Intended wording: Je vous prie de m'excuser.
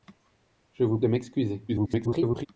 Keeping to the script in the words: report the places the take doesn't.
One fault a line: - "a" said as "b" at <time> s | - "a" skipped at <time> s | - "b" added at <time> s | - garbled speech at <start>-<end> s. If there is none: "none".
- "prie" skipped at 1.0 s
- garbled speech at 1.7-2.5 s